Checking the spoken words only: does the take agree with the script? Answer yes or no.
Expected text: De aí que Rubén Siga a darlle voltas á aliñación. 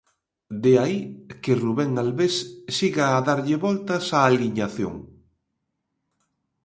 no